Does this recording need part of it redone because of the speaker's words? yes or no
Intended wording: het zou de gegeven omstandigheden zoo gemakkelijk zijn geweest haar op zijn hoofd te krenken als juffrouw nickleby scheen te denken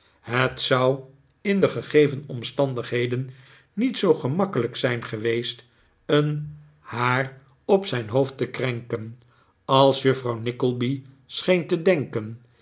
yes